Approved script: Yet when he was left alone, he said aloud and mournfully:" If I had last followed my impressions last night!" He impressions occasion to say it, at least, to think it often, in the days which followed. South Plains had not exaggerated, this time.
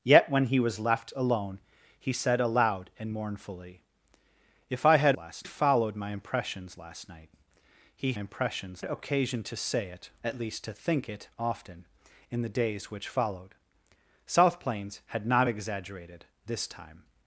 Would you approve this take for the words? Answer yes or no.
yes